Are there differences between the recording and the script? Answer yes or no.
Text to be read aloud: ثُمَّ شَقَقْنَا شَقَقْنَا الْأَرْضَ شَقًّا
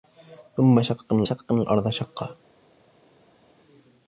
no